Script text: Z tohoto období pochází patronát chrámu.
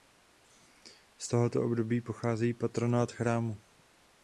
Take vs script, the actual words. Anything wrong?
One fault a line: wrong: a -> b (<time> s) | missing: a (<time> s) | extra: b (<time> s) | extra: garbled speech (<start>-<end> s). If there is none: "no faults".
no faults